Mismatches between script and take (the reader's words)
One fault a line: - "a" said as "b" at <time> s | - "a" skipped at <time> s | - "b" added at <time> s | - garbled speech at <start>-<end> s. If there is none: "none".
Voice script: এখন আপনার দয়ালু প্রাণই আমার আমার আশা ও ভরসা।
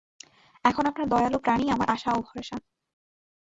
- "আমার" skipped at 1.9 s